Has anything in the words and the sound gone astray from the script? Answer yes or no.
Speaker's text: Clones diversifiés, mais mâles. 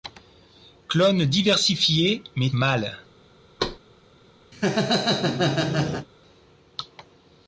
yes